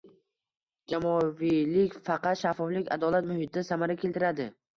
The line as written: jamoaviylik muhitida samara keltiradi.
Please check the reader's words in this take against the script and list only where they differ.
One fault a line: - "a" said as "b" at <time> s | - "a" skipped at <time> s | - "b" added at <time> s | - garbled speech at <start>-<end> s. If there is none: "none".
- "faqat shaffoflik adolat" added at 2.1 s